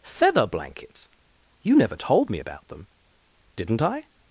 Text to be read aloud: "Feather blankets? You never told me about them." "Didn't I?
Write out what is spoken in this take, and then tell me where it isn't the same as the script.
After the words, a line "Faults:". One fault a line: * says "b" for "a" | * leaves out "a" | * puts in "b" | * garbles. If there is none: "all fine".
"Feather blankets? You never told me about them." "Didn't I?
Faults:
all fine